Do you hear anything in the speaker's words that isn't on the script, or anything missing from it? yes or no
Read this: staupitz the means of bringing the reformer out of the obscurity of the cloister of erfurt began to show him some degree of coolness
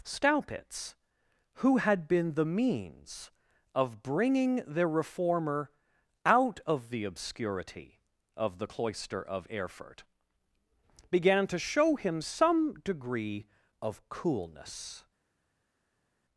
yes